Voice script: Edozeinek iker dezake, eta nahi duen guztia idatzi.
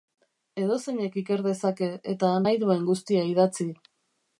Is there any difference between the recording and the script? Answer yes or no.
no